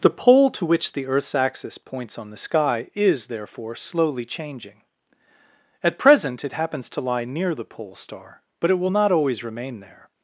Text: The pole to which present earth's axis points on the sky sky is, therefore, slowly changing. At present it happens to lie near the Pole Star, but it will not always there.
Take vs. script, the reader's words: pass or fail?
fail